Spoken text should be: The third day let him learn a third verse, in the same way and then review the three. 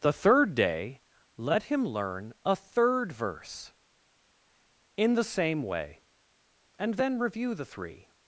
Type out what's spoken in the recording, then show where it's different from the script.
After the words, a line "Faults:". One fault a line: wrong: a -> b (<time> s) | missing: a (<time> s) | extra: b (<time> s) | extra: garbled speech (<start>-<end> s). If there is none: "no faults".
The third day let him learn a third verse, in the same way and then review the three.
Faults:
no faults